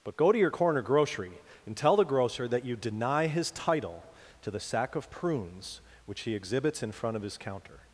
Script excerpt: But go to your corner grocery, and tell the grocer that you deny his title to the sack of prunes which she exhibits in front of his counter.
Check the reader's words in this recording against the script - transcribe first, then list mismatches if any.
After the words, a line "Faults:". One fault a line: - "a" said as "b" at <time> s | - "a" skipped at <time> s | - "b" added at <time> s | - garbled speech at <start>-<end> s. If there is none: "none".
But go to your corner grocery, and tell the grocer that you deny his title to the sack of prunes which he exhibits in front of his counter.
Faults:
- "she" said as "he" at 6.2 s